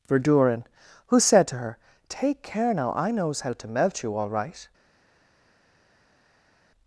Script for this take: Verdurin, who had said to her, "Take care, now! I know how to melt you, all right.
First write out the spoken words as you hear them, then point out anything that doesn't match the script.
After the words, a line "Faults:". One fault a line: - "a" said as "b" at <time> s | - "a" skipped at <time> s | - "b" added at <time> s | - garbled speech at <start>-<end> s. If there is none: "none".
Verdurin, who said to her, "Take care, now! I knows how to melt you, all right.
Faults:
- "had" skipped at 1.2 s
- "know" said as "knows" at 3.1 s